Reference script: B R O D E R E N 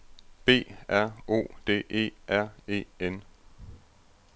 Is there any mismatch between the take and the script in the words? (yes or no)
no